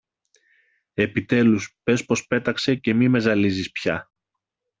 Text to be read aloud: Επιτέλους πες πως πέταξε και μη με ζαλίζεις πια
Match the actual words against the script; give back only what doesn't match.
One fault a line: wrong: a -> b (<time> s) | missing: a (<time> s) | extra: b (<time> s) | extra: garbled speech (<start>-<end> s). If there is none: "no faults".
no faults